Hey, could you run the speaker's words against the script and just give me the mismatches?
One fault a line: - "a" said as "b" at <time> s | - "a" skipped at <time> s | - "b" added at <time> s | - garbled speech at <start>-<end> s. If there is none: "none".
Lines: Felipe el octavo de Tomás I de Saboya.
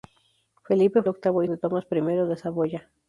none